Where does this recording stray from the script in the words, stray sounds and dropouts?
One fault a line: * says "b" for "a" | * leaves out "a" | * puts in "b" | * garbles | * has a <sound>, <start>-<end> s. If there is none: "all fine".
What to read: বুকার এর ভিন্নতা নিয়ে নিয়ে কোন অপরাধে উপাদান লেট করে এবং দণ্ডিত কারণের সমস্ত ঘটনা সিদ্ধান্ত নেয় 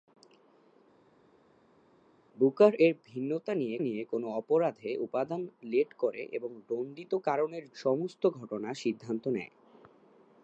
all fine